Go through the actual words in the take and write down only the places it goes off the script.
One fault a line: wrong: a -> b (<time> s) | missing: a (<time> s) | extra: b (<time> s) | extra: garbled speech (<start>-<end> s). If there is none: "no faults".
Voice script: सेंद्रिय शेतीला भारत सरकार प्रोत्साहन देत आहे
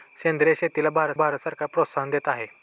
extra: भारत (1.1 s)